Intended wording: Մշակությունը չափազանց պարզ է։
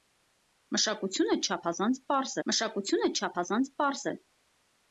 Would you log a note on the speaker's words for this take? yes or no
yes